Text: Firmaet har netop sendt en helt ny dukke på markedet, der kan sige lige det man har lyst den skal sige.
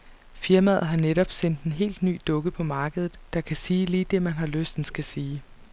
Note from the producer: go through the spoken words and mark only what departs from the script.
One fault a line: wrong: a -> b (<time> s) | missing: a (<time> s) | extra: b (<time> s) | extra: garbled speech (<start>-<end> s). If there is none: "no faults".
no faults